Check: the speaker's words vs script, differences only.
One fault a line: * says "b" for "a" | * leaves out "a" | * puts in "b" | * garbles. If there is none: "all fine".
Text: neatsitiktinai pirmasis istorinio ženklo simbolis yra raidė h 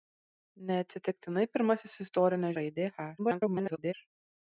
* leaves out "ženklo simbolis yra"
* garbles